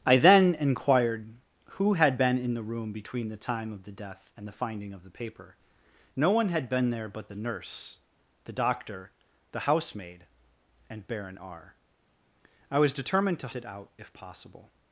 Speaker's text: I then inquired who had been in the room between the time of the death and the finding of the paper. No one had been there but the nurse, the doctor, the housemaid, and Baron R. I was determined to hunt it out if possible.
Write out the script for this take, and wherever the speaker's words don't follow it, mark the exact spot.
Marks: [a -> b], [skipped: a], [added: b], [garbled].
I then inquired who had been in the room between the time of the death and the finding of the paper. No one had been there but the nurse, the doctor, the housemaid, and Baron R. I was determined to [skipped: hunt] it out if possible.